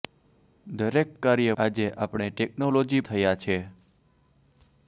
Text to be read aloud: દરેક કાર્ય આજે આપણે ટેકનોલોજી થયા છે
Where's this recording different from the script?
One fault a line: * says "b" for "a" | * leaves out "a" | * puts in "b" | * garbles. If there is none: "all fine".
all fine